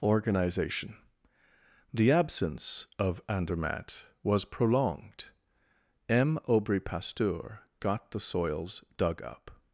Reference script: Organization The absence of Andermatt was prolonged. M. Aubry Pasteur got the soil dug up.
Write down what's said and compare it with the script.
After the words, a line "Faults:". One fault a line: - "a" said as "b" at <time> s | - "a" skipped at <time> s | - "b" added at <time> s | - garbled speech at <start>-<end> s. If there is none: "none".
Organization The absence of Andermatt was prolonged. M. Aubry Pasteur got the soils dug up.
Faults:
- "soil" said as "soils" at 8.2 s